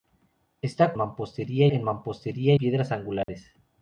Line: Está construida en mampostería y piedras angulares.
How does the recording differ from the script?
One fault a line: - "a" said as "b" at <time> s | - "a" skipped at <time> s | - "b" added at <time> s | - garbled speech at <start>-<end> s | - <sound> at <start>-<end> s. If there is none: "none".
- "construida" said as "mampostería" at 1.0 s
- "y" skipped at 2.5 s
- dropout at 3.2-3.3 s